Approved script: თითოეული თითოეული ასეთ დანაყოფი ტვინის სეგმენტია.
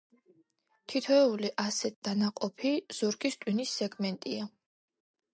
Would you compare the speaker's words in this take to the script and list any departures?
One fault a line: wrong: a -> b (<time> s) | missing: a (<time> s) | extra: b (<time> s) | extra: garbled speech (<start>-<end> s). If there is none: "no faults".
missing: თითოეული (1.5 s)
extra: ზურგის (3.0 s)